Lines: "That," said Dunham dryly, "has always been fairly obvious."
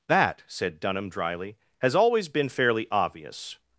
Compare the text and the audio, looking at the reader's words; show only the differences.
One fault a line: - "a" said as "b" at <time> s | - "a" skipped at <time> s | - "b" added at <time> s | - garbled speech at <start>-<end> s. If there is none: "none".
none